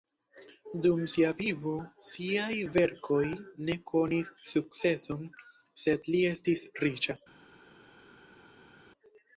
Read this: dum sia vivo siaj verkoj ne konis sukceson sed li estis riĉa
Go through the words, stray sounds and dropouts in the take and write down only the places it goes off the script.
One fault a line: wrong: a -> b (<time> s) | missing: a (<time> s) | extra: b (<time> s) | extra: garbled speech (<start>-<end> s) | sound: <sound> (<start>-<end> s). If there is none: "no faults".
no faults